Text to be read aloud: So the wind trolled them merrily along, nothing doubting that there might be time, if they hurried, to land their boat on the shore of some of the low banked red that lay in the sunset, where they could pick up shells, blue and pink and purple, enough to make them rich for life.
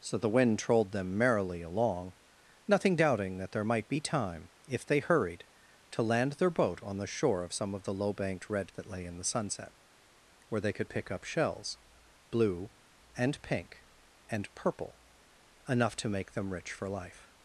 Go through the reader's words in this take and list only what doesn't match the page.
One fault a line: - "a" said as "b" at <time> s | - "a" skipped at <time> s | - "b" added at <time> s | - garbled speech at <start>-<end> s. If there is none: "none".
none